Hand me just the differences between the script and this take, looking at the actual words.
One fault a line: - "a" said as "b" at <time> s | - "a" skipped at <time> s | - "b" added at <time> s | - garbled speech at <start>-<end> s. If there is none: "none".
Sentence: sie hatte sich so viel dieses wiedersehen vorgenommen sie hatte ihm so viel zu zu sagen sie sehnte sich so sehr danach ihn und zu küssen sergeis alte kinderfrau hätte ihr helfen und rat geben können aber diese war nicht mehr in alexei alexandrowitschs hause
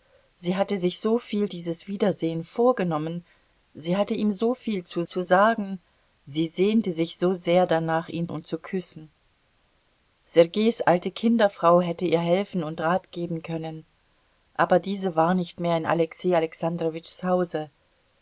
none